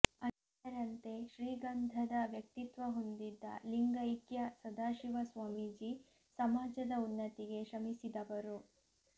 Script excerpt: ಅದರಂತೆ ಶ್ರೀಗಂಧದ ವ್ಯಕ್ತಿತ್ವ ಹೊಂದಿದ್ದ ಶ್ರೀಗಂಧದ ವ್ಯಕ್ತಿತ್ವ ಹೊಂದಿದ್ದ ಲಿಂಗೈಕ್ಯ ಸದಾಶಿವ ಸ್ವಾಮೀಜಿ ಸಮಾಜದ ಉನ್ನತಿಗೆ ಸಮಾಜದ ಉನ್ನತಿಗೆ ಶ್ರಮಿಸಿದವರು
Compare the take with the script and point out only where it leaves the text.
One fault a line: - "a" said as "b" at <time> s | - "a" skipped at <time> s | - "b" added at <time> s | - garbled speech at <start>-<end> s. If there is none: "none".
- "ಶ್ರೀಗಂಧದ ವ್ಯಕ್ತಿತ್ವ ಹೊಂದಿದ್ದ" skipped at 3.4 s
- "ಸಮಾಜದ ಉನ್ನತಿಗೆ" skipped at 7.6 s